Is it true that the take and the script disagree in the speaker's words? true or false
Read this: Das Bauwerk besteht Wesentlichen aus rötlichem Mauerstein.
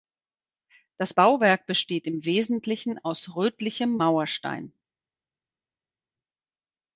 true